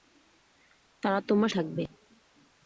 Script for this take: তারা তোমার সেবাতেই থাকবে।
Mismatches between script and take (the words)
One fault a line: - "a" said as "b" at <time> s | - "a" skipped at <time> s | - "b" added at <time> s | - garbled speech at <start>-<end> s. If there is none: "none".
- "সেবাতেই" skipped at 1.5 s